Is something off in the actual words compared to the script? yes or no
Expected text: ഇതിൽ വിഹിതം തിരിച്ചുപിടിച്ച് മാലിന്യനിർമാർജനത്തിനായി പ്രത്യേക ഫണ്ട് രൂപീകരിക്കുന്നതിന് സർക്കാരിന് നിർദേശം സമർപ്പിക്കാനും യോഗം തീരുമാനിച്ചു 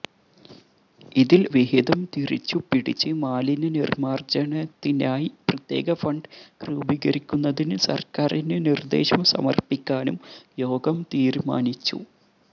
no